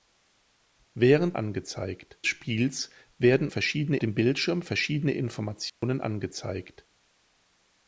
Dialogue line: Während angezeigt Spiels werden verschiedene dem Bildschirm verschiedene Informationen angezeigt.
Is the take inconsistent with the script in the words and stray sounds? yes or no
yes